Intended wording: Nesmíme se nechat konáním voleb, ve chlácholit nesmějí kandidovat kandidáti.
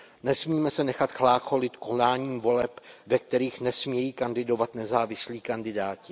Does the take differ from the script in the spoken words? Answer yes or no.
yes